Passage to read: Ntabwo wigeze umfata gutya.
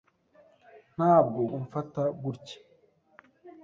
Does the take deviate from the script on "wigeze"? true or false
true